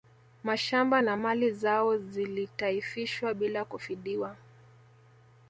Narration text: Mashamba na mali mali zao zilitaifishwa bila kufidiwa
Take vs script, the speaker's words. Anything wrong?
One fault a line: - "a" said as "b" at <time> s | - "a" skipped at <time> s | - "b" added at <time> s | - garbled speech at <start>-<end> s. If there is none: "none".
- "mali" skipped at 1.5 s